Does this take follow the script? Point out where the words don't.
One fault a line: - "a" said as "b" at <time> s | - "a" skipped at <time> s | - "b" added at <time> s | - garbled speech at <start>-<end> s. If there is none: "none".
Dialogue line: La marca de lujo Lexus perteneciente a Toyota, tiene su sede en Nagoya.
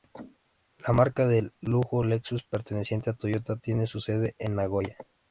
none